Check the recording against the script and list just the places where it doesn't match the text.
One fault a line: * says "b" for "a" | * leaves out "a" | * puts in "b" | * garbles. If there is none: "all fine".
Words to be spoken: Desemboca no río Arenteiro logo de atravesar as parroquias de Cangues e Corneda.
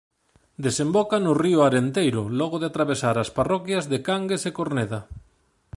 all fine